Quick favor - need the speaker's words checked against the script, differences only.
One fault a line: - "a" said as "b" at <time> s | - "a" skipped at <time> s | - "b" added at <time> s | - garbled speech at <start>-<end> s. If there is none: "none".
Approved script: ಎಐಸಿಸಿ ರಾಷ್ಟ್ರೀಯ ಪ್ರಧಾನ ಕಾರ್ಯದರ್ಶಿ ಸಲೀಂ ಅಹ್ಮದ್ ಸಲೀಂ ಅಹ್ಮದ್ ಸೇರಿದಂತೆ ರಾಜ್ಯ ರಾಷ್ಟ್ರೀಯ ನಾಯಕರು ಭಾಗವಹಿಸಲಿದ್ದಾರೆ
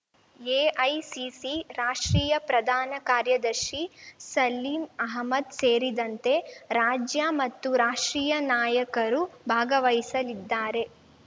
- "ಸಲೀಂ ಅಹ್ಮದ್" skipped at 5.5 s
- "ಮತ್ತು" added at 7.4 s